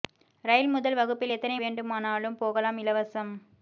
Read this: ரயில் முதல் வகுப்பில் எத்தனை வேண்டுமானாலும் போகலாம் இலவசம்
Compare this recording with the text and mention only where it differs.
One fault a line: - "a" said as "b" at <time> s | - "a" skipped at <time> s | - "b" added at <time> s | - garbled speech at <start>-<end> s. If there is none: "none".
none